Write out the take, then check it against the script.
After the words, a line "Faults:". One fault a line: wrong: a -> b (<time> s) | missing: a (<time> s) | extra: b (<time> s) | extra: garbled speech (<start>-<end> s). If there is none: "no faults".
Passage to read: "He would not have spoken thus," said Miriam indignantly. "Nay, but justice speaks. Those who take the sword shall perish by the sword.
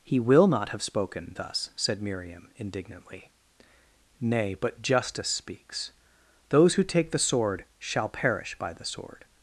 "He will not have spoken thus," said Miriam indignantly. "Nay, but justice speaks. Those who take the sword shall perish by the sword.
Faults:
wrong: would -> will (0.2 s)